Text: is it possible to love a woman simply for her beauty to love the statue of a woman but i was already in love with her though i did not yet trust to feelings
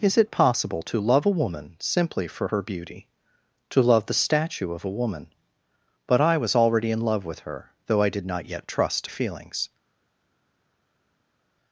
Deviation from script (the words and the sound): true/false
false